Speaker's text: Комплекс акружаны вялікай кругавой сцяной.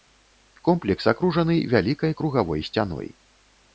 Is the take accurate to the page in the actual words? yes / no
yes